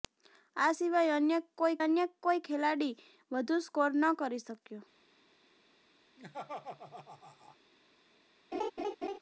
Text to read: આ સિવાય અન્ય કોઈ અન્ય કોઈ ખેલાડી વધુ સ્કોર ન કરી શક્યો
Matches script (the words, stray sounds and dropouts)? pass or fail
fail